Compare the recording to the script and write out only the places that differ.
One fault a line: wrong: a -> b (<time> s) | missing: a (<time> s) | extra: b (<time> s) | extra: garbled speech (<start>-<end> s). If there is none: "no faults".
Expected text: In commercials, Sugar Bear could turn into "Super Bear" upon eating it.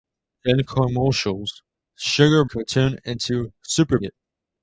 missing: Bear (2.4 s)
missing: Bear upon eating (4.0 s)